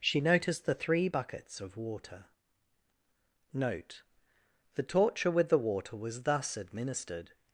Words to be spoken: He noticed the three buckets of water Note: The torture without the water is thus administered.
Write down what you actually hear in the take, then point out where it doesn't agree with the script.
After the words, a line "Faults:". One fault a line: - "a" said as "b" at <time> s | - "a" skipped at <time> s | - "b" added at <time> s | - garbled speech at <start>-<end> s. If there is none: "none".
She noticed the three buckets of water Note: The torture with the water was thus administered.
Faults:
- "He" said as "She" at 0.0 s
- "without" said as "with" at 5.3 s
- "is" said as "was" at 6.0 s